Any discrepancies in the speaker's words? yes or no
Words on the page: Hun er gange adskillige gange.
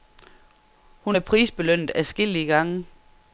yes